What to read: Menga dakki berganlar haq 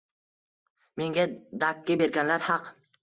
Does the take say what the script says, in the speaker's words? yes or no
yes